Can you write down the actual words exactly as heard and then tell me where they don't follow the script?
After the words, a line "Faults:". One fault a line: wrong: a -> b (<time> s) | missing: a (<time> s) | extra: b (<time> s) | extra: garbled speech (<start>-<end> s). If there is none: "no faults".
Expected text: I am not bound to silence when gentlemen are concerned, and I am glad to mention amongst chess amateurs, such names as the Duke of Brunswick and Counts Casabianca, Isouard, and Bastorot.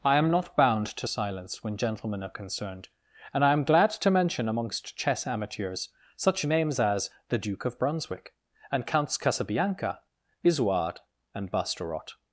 I am not bound to silence when gentlemen are concerned, and I am glad to mention amongst chess amateurs, such names as the Duke of Brunswick and Counts Casabianca, Isouard, and Bastorot.
Faults:
no faults